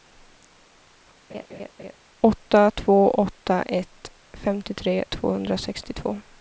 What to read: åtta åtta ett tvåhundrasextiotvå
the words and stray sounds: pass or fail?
fail